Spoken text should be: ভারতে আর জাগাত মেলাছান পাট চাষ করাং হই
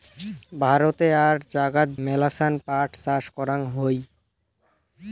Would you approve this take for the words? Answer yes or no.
yes